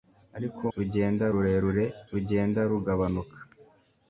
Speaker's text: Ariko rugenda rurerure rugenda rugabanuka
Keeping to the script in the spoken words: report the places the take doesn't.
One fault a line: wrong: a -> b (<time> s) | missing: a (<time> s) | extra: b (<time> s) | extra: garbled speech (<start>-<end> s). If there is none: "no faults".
no faults